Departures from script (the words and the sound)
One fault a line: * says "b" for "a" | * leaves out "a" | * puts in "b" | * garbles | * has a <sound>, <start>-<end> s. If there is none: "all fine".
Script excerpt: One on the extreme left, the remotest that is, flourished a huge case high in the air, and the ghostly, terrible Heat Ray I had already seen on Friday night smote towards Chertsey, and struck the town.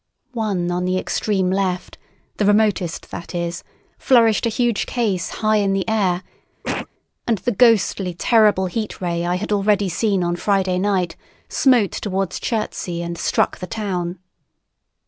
* has a cough, 6.6-6.9 s